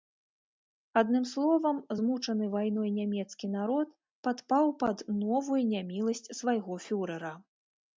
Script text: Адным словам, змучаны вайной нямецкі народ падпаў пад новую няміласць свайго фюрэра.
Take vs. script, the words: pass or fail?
pass